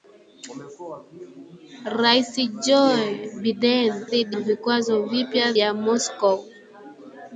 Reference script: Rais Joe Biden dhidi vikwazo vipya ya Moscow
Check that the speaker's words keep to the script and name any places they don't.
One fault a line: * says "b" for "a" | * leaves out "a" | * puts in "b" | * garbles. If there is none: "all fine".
all fine